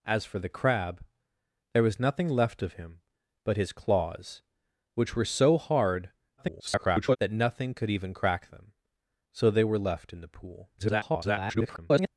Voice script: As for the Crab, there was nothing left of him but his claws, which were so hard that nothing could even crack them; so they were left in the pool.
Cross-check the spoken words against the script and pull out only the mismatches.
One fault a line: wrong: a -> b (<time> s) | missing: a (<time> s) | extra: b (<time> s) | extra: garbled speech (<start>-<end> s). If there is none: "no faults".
extra: garbled speech (6.4-7.2 s)
extra: garbled speech (10.8-12.1 s)